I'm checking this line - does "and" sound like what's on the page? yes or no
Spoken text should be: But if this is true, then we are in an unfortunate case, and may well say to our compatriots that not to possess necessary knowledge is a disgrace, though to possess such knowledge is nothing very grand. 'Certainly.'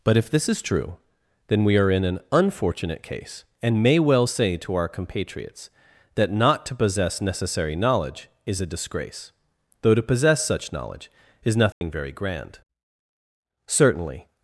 yes